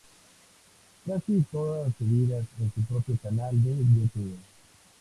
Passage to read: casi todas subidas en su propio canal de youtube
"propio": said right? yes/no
yes